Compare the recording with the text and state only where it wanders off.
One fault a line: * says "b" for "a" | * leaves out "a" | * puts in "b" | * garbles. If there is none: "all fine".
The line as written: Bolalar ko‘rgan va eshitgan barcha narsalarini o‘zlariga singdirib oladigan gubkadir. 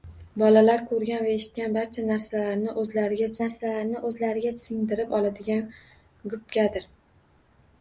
* puts in "narsalarini o‘zlariga"